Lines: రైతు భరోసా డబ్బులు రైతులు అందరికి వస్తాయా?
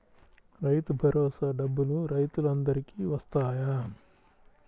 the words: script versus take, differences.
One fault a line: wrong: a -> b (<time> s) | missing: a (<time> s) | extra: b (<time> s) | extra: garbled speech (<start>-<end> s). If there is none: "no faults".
no faults